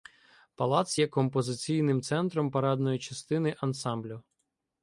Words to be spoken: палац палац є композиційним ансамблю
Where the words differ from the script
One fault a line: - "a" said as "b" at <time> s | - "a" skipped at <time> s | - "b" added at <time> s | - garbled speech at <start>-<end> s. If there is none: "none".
- "палац" skipped at 1.0 s
- "центром парадної частини" added at 2.0 s